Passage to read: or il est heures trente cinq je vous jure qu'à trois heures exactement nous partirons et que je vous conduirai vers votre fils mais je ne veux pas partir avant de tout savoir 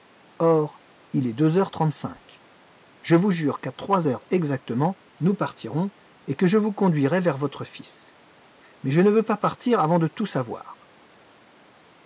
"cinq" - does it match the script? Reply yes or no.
yes